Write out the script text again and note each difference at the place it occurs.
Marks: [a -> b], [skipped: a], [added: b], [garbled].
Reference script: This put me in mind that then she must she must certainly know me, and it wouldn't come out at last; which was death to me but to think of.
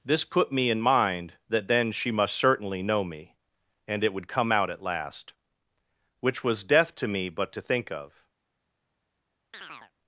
This put me in mind that then she must [skipped: she must] certainly know me, and it [wouldn't -> would] come out at last; which was death to me but to think of.